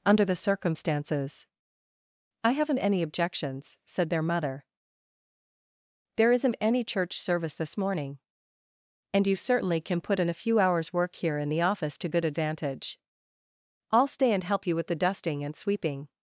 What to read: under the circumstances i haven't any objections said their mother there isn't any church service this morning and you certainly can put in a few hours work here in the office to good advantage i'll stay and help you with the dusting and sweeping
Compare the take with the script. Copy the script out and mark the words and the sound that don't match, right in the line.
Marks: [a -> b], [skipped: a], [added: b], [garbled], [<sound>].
under the circumstances i haven't any objections said their mother there isn't any church service this morning and you certainly can put in a few hours work here in the office to good advantage i'll stay and help you with the dusting and sweeping